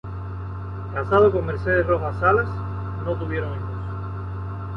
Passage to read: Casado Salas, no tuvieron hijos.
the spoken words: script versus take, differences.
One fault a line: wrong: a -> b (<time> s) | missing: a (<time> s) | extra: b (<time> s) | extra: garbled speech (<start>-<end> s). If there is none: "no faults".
extra: con Mercedes Rojas (1.3 s)